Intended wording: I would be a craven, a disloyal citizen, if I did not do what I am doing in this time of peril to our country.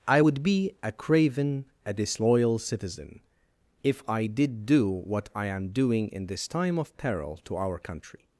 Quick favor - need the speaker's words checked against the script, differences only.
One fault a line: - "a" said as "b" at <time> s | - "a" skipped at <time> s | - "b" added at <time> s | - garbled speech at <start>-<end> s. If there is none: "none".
- "not" skipped at 4.7 s